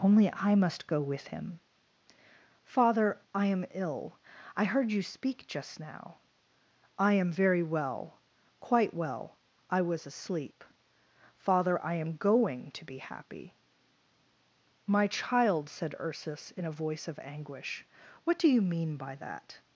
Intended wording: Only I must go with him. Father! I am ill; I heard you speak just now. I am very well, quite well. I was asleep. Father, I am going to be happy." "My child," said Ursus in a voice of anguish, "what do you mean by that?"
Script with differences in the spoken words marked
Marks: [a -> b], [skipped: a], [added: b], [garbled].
Only I must go with him. Father! I am ill; I heard you speak just now. I am very well, quite well. I was asleep. Father, I am going to be happy." "My child," said Ursus in a voice of anguish, "what do you mean by that?"